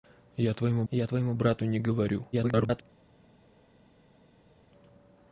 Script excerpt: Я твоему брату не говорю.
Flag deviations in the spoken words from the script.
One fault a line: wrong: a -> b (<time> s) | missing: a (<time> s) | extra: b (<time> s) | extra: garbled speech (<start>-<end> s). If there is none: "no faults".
extra: я твоему (0.9 s)
extra: garbled speech (2.3-2.8 s)